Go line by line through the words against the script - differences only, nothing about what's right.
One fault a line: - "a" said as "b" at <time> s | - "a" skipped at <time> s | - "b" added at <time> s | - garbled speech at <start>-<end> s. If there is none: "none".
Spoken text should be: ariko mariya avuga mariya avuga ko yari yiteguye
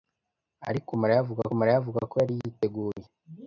none